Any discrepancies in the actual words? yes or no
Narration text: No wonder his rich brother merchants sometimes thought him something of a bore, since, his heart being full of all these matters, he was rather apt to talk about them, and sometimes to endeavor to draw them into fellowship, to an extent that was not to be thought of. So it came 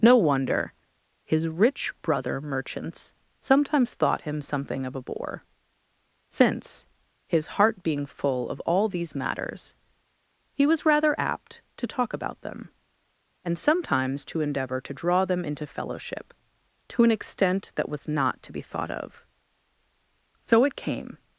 no